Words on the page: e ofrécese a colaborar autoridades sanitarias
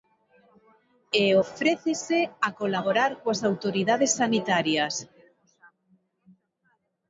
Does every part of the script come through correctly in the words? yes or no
no